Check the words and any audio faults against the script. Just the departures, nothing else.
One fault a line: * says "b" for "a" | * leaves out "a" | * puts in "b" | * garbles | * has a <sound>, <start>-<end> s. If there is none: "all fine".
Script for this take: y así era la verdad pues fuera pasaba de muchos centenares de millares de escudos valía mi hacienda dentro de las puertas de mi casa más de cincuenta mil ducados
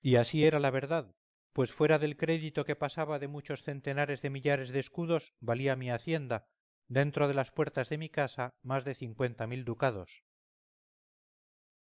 * puts in "del crédito que"